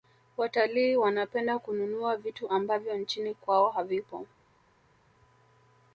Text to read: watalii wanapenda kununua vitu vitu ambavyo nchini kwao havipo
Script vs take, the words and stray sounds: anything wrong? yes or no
yes